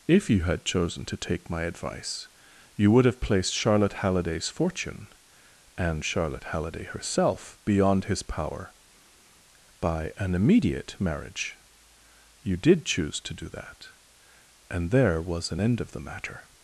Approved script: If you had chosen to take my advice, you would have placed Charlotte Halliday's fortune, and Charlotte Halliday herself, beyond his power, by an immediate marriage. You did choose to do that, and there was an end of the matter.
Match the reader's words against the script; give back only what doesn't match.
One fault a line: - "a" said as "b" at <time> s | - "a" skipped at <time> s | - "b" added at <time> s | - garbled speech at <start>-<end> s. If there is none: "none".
none